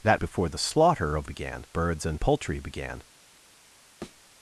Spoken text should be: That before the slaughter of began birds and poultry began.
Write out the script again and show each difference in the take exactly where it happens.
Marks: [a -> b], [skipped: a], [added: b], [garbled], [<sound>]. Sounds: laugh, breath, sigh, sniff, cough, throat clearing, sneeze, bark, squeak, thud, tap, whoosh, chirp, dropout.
That before the slaughter of began birds and poultry began. [thud]